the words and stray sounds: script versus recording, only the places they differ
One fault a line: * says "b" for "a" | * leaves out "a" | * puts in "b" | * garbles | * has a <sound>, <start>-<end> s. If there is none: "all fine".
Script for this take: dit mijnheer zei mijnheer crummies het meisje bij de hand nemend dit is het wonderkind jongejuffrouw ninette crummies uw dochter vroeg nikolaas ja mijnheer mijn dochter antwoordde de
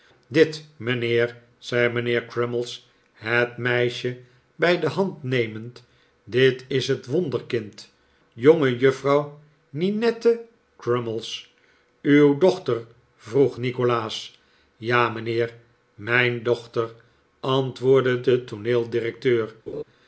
* has a laugh, 19.7-19.8 s